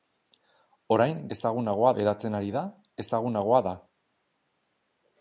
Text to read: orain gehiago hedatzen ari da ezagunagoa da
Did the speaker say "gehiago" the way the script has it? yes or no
no